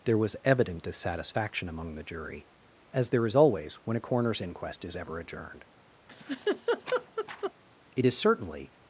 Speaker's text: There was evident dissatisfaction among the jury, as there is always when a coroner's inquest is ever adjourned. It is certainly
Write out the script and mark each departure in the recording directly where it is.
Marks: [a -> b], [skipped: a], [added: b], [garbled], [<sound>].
There was evident dissatisfaction among the jury, as there is always when a coroner's inquest is ever adjourned. [laugh] It is certainly